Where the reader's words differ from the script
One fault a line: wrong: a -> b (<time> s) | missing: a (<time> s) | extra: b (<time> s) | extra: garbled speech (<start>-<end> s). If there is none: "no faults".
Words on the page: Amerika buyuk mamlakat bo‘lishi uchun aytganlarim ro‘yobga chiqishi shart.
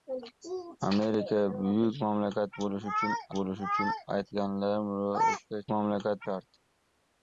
extra: bo‘lishi uchun (3.4 s)
wrong: chiqishi -> mamlakat (5.7 s)